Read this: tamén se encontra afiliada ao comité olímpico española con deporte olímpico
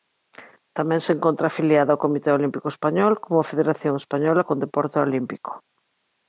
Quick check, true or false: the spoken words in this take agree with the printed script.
false